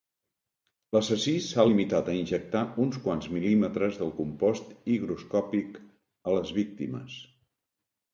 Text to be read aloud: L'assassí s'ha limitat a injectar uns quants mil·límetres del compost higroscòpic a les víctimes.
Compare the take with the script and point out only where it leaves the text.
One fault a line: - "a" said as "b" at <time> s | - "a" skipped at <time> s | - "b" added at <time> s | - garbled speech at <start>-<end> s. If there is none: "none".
none